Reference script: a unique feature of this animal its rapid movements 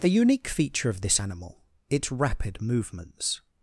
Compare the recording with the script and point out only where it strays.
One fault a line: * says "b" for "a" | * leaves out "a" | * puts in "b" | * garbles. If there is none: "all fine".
all fine